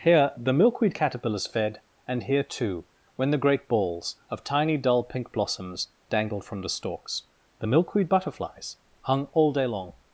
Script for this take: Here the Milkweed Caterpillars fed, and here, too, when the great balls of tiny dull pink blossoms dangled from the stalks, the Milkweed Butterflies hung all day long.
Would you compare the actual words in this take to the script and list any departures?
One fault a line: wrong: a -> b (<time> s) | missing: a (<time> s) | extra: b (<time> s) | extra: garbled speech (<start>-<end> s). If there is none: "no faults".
no faults